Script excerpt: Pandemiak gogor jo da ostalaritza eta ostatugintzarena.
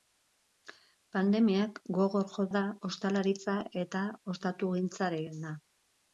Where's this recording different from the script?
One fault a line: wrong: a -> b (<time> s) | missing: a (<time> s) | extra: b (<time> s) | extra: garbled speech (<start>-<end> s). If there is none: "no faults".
no faults